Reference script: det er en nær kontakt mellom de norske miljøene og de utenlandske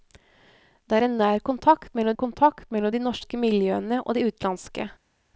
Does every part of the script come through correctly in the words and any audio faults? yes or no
no